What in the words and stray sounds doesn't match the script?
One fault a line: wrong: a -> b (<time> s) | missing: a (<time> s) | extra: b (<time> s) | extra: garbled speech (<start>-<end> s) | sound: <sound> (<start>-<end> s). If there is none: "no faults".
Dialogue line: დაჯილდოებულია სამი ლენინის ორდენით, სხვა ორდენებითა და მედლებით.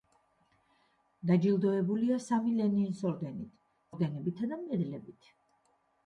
missing: სხვა (3.6 s)